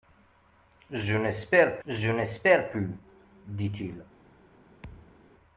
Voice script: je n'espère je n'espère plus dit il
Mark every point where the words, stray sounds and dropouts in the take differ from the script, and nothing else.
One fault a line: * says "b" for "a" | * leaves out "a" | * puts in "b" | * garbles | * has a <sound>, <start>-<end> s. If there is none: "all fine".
* has a thud, 4.8-5.2 s